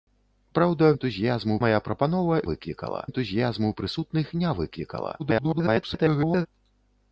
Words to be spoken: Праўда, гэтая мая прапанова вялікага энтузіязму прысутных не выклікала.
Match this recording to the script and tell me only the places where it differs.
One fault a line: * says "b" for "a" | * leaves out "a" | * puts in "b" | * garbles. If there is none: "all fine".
* says "энтузіязму" for "гэтая"
* says "выклікала" for "вялікага"
* garbles